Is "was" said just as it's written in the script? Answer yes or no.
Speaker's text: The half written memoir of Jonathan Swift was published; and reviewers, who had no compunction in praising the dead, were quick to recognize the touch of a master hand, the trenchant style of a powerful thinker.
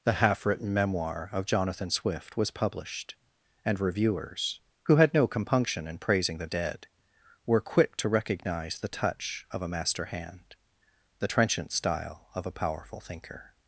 yes